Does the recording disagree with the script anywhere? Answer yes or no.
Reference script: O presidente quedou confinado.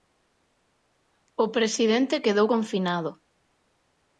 no